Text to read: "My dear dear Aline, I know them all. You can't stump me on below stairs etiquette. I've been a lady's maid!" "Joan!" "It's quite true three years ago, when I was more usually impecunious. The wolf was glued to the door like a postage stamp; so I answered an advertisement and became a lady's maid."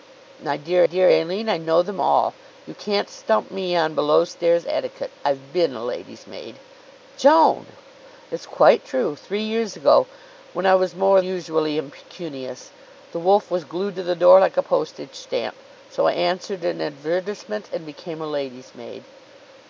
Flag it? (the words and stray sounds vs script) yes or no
no